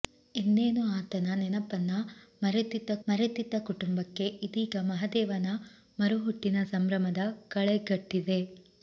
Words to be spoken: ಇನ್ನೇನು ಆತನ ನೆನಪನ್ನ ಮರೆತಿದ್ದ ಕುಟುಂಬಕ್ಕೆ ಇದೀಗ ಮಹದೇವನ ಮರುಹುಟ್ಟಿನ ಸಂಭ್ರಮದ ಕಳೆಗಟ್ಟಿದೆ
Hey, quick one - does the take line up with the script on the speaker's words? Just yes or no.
no